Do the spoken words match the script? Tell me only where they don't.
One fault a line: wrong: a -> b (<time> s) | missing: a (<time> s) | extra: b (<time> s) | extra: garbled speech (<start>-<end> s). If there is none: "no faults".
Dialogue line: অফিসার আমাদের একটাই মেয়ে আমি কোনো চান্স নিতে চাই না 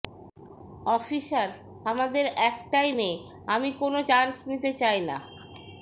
no faults